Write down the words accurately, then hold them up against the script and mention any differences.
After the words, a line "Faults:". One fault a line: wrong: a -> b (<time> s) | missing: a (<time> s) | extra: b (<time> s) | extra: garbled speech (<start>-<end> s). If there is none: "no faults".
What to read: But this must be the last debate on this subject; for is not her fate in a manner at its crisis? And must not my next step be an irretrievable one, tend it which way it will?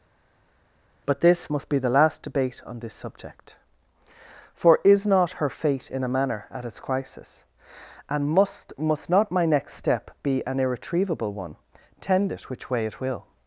But this must be the last debate on this subject; for is not her fate in a manner at its crisis? And must must not my next step be an irretrievable one, tend it which way it will?
Faults:
extra: must (8.8 s)